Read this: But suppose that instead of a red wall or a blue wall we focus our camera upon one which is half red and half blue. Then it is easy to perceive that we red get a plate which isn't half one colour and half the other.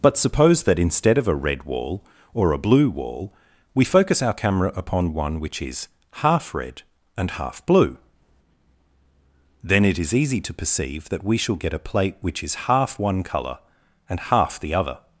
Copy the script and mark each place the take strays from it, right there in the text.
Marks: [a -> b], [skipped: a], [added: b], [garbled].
But suppose that instead of a red wall or a blue wall we focus our camera upon one which is half red and half blue. Then it is easy to perceive that we [red -> shall] get a plate which [isn't -> is] half one colour and half the other.